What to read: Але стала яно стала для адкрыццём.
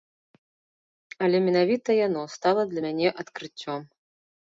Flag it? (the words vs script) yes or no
yes